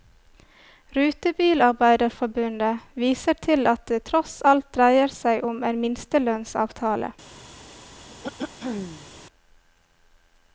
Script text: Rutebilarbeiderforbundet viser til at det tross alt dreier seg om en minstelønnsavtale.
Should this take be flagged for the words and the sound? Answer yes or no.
yes